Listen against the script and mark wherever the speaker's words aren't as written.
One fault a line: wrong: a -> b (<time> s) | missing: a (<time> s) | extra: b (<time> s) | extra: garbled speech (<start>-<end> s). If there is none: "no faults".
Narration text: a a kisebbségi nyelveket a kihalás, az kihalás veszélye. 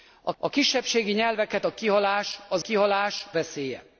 no faults